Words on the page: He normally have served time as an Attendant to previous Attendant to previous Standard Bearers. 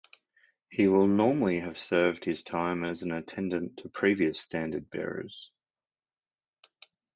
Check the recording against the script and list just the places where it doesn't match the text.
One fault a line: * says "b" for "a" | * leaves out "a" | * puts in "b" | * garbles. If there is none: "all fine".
* puts in "will"
* puts in "his"
* leaves out "Attendant to previous"